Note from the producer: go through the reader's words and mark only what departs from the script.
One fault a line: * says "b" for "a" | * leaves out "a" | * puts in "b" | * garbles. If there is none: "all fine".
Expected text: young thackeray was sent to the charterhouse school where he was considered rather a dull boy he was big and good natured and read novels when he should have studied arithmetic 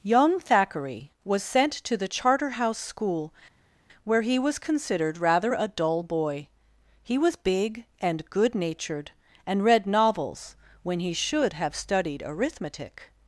all fine